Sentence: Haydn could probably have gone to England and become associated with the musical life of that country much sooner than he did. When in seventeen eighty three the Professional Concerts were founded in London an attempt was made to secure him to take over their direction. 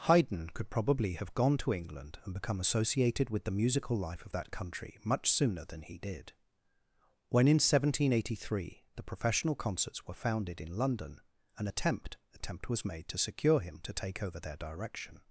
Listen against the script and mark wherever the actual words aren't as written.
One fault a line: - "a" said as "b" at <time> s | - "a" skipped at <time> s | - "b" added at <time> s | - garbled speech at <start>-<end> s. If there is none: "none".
- "attempt" added at 12.3 s